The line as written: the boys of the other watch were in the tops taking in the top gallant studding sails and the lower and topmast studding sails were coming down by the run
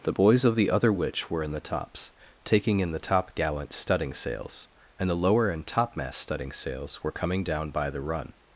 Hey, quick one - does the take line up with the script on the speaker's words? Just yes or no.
no